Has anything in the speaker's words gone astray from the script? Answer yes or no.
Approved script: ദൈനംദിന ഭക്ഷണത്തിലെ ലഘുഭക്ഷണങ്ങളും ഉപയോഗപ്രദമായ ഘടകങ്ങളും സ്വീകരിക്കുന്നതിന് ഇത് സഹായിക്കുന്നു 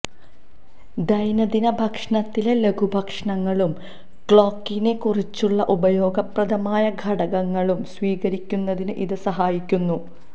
yes